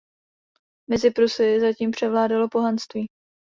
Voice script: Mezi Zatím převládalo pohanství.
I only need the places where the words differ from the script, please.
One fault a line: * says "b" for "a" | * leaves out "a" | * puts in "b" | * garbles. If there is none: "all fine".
* puts in "Prusy"